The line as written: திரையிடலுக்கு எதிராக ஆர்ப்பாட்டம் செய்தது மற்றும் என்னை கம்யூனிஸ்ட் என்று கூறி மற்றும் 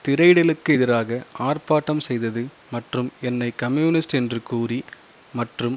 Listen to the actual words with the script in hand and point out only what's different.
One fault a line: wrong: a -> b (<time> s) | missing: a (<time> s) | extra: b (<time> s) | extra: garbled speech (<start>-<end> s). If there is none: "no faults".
no faults